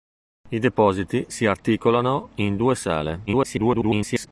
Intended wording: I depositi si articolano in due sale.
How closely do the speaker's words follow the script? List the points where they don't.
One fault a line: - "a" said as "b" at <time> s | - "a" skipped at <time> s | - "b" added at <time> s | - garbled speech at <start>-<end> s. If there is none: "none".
- garbled speech at 3.3-4.3 s